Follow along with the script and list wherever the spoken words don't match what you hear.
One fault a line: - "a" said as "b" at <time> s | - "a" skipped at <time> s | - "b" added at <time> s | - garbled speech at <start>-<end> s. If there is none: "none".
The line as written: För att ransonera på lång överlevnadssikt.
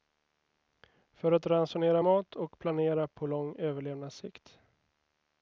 - "mat och planera" added at 2.0 s